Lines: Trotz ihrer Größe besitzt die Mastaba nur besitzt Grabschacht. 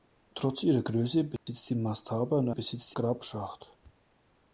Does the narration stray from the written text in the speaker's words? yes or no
no